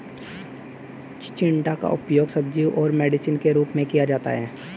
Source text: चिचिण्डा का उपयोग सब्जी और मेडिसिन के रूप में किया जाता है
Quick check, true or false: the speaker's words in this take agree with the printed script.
true